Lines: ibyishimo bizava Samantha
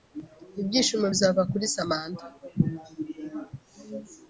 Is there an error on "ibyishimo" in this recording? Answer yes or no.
no